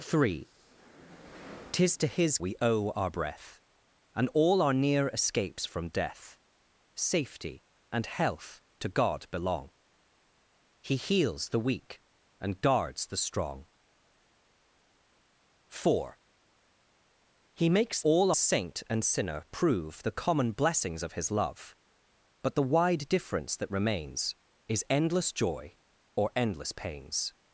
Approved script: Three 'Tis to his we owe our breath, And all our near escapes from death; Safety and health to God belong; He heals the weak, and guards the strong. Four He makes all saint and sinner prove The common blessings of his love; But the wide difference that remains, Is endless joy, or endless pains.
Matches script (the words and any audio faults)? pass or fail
pass